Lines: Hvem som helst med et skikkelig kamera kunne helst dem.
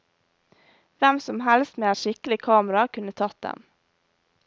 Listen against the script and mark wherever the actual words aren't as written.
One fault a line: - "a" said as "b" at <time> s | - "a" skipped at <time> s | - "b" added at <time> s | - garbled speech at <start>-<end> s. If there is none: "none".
- "helst" said as "tatt" at 3.2 s